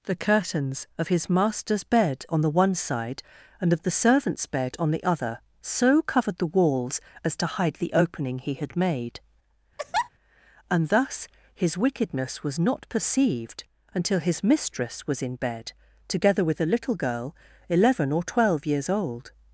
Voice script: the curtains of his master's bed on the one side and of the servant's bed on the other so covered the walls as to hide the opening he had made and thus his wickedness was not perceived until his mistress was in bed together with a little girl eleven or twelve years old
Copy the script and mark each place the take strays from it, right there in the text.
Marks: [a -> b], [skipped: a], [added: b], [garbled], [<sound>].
the curtains of his master's bed on the one side and of the servant's bed on the other so covered the walls as to hide the opening he had made [laugh] and thus his wickedness was not perceived until his mistress was in bed together with a little girl eleven or twelve years old